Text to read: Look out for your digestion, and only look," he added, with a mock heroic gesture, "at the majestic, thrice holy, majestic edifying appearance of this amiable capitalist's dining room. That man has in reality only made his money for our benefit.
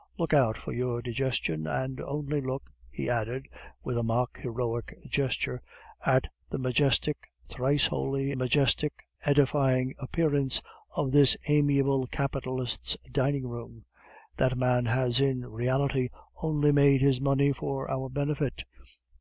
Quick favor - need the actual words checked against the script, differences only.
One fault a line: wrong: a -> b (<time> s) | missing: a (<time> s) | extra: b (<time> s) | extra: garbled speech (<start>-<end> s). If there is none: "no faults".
no faults